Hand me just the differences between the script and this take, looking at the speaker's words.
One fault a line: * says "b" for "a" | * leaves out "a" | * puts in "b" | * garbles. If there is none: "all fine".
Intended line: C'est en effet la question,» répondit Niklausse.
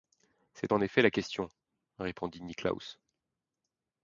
all fine